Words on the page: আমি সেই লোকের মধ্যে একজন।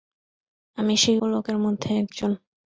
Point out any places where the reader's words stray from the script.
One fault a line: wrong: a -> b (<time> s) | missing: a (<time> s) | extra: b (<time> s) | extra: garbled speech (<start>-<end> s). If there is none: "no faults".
no faults